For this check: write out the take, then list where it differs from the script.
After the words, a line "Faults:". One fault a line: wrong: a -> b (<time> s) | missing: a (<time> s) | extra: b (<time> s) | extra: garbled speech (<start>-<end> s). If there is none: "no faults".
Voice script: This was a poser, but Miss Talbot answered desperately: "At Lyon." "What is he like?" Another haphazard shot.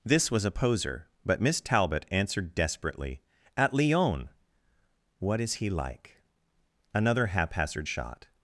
This was a poser, but Miss Talbot answered desperately: "At Lyon." "What is he like?" Another haphazard shot.
Faults:
no faults